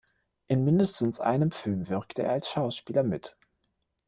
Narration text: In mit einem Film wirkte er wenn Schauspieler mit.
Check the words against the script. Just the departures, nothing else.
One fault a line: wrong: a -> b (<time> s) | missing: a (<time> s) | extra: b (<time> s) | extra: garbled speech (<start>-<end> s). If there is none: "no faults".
wrong: mit -> mindestens (0.7 s)
wrong: wenn -> als (2.3 s)